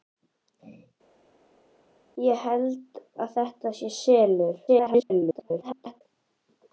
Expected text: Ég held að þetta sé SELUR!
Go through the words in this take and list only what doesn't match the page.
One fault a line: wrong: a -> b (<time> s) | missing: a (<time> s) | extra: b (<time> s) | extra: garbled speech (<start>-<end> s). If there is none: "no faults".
extra: garbled speech (4.7-6.0 s)